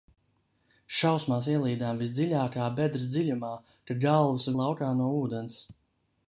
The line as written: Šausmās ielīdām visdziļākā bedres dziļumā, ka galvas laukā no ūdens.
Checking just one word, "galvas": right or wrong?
right